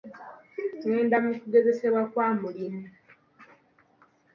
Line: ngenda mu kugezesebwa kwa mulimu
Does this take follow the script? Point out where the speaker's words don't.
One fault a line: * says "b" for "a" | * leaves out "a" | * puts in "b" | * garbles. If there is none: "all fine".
all fine